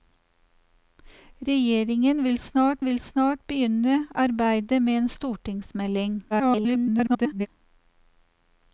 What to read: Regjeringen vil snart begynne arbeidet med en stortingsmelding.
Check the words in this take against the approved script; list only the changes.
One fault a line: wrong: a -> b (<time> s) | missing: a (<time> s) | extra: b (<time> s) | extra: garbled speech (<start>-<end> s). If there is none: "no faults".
extra: vil snart (2.8 s)
extra: garbled speech (6.3-7.5 s)